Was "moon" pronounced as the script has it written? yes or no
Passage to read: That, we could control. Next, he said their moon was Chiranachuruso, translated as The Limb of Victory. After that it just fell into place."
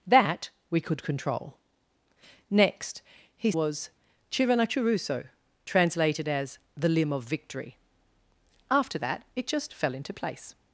no